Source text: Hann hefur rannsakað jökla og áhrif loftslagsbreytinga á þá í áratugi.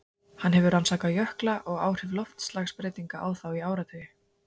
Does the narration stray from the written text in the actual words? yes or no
no